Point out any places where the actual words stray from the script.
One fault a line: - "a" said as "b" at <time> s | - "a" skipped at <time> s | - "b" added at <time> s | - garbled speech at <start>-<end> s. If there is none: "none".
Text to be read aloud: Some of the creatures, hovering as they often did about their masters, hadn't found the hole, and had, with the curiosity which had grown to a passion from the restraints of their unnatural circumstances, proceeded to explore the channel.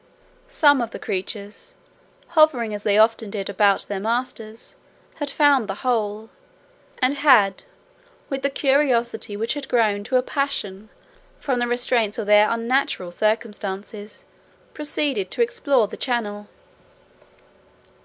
- "hadn't" said as "had" at 5.2 s